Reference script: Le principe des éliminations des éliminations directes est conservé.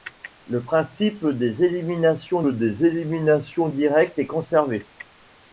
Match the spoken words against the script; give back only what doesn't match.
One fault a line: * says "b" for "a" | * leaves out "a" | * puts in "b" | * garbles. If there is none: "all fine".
all fine